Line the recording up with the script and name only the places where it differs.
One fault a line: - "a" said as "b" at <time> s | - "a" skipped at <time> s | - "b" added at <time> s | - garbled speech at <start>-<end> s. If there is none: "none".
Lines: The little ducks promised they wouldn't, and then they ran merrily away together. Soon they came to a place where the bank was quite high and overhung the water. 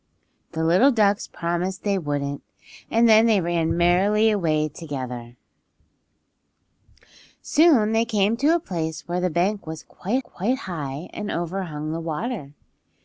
- "quite" added at 10.2 s